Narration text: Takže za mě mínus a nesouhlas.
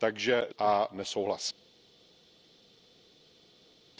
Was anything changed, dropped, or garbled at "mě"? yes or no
yes